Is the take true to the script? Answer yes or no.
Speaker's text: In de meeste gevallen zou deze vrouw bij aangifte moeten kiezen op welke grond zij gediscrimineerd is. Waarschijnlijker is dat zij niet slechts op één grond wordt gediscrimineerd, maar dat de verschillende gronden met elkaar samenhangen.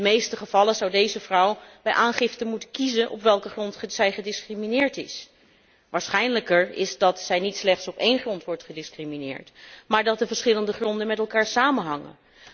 yes